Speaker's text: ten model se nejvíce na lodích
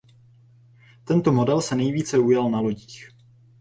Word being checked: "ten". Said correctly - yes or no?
no